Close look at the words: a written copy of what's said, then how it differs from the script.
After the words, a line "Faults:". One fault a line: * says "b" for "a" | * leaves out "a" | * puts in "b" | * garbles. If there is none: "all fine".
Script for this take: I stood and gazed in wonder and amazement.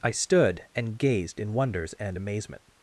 I stood and gazed in wonders and amazement.
Faults:
* says "wonders" for "wonder"